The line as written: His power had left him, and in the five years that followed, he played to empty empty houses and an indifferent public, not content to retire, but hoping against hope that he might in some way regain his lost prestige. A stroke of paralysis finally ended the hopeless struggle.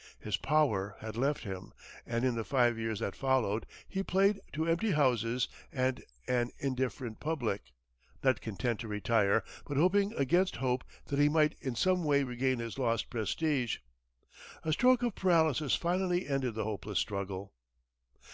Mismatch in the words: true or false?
true